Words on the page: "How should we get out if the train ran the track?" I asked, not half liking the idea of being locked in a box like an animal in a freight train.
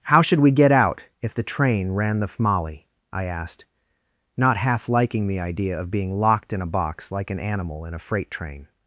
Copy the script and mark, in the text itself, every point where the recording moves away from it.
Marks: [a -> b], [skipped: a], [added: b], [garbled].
"How should we get out if the train ran the [track?" -> fmali] I asked, not half liking the idea of being locked in a box like an animal in a freight train.